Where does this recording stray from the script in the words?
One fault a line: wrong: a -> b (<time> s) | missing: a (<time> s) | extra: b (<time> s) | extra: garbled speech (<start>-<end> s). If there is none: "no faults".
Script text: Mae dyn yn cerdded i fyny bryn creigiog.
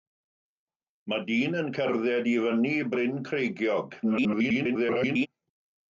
extra: garbled speech (4.0-5.3 s)